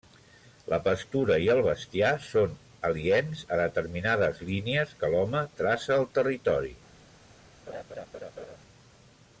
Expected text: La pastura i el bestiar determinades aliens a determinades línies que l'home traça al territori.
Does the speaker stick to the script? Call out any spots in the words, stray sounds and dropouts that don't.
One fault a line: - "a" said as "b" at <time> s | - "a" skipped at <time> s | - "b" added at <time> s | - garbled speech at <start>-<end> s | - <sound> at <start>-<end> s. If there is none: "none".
- "determinades" said as "són" at 2.3 s
- laugh at 7.7-8.6 s